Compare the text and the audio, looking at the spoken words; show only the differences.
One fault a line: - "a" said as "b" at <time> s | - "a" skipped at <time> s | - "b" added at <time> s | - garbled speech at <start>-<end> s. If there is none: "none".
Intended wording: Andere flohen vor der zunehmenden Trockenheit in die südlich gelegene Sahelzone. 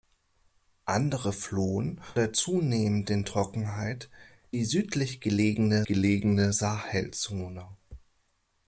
- "vor" skipped at 2.0 s
- "in" skipped at 4.1 s
- "gelegene" added at 5.8 s